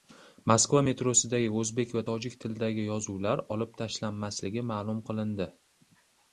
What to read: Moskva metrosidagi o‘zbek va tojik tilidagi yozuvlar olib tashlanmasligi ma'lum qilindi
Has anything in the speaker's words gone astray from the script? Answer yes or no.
no